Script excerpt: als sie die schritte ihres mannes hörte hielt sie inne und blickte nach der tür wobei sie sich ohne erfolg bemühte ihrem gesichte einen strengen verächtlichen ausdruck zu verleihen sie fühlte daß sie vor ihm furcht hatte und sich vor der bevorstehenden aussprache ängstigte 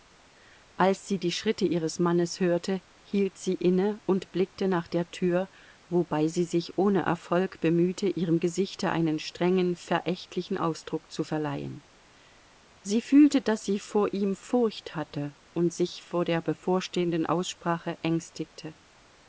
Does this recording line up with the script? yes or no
yes